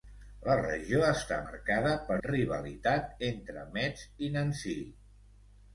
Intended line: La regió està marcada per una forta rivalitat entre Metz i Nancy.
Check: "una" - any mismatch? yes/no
yes